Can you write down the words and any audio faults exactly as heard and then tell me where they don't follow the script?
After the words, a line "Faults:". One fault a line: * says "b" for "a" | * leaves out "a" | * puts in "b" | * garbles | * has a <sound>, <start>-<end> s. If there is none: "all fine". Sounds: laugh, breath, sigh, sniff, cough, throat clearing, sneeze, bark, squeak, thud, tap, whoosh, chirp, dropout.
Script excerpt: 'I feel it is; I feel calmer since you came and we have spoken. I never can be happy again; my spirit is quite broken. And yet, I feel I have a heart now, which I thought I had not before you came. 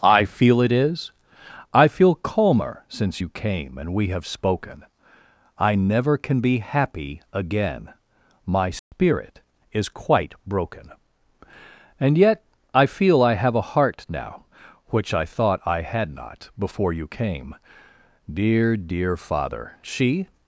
'I feel it is; I feel calmer since you came and we have spoken. I never can be happy again; my spirit is quite broken. And yet, I feel I have a heart now, which I thought I had not before you came. Dear, dear father,' she
Faults:
* has a dropout, 8.8-8.9 s
* puts in "Dear dear father she"